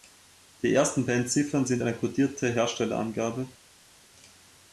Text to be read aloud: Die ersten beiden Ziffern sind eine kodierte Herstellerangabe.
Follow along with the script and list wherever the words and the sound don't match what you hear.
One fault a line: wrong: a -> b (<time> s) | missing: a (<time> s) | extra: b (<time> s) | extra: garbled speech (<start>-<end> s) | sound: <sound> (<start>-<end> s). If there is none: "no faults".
no faults